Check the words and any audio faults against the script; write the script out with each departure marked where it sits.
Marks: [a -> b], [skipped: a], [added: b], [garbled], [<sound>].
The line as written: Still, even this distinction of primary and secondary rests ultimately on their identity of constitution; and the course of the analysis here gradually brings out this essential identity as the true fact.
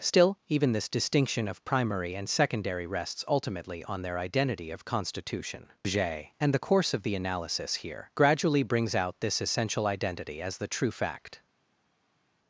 Still, even this distinction of primary and secondary rests ultimately on their identity of constitution; [added: j] and the course of the analysis here gradually brings out this essential identity as the true fact.